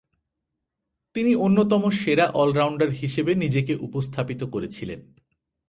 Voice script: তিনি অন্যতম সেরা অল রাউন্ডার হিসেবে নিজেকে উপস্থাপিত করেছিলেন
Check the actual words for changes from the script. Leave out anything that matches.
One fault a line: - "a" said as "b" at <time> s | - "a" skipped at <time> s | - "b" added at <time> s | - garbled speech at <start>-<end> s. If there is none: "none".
none